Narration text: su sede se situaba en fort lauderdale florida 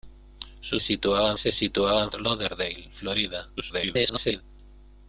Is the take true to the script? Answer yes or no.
no